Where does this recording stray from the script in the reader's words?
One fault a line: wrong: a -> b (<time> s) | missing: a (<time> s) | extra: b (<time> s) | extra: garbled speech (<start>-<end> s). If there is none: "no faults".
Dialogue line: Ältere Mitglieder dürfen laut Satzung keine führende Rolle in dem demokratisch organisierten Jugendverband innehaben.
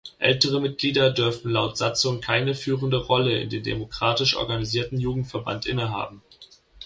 no faults